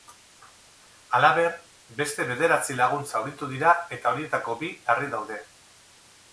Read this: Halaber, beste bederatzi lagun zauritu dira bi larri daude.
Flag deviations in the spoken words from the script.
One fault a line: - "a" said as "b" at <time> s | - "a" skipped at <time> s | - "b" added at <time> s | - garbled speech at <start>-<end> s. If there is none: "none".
- "eta horietako" added at 4.0 s